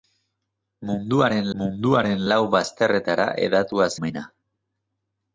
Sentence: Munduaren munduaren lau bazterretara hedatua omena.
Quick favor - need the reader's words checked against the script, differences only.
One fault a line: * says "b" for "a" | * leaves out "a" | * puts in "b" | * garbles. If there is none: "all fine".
all fine